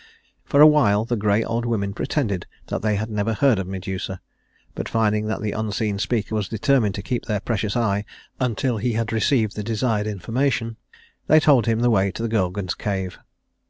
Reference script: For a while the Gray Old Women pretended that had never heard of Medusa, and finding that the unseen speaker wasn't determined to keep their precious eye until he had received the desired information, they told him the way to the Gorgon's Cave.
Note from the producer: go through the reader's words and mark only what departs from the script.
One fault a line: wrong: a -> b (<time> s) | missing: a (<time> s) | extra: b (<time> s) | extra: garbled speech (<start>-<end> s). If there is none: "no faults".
extra: they (2.8 s)
wrong: and -> but (4.7 s)
wrong: wasn't -> was (6.3 s)